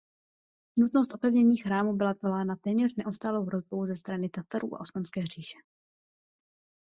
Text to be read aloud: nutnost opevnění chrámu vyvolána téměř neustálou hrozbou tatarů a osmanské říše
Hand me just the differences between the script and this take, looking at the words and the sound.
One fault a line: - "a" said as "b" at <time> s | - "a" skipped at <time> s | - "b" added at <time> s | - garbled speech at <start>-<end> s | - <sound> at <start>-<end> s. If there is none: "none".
- "byla" added at 1.9 s
- "ze strany" added at 3.9 s